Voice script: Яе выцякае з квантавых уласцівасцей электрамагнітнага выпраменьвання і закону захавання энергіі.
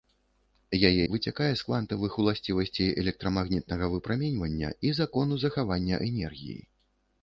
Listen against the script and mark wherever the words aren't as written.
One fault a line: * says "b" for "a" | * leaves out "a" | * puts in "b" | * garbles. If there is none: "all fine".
all fine